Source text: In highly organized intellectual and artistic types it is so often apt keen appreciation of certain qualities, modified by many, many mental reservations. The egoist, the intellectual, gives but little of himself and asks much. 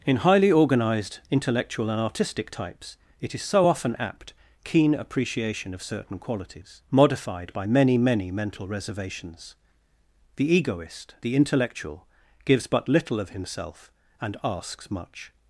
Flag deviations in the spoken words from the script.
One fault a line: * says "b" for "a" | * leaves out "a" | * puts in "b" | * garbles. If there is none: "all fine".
all fine